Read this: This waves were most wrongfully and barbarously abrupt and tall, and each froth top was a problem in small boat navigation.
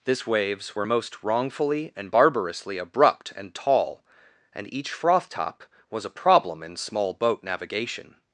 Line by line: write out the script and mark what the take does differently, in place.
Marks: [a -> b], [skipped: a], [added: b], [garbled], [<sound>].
This waves were most wrongfully and barbarously abrupt and tall, and each froth top was a problem in small boat navigation.